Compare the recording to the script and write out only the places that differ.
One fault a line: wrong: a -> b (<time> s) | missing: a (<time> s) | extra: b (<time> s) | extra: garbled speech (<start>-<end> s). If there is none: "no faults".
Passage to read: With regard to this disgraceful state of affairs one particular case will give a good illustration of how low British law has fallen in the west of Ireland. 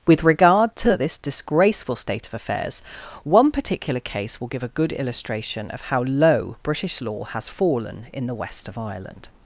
no faults